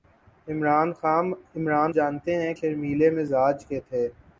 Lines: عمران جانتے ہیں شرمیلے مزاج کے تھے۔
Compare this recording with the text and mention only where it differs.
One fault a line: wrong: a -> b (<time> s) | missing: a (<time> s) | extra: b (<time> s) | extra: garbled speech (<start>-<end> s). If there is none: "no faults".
no faults